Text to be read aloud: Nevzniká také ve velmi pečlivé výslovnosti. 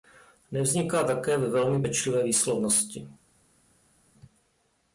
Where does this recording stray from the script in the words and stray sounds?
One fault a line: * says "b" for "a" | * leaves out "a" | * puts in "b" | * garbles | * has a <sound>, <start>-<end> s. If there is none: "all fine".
all fine